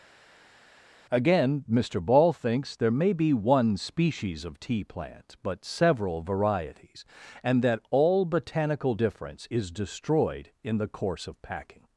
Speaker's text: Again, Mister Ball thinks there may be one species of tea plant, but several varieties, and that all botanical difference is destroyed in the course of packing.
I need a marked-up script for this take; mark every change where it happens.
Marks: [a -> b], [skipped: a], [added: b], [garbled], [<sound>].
Again, Mister Ball thinks there may be one species of tea plant, but several varieties, and that all botanical difference is destroyed in the course of packing.